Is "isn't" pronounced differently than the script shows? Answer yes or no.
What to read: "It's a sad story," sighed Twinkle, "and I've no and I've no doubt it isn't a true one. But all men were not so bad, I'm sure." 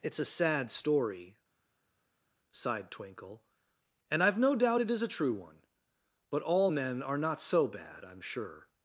yes